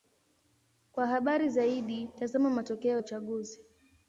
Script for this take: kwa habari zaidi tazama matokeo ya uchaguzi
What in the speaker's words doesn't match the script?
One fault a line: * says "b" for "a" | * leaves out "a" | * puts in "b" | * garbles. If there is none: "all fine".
* leaves out "ya"